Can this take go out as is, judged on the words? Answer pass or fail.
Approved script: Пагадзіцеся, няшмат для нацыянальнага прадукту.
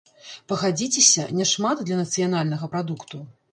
pass